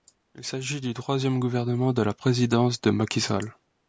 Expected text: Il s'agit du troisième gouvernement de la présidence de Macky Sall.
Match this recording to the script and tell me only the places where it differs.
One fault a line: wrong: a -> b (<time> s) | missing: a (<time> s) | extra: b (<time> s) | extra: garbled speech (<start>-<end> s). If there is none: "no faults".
no faults